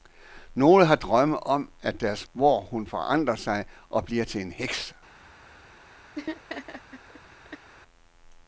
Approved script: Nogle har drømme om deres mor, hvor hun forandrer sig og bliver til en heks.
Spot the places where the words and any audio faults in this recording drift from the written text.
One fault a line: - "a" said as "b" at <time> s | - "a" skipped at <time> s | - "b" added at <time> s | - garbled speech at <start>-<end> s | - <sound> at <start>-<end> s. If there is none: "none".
- "mor" skipped at 2.3 s
- laugh at 6.2-7.7 s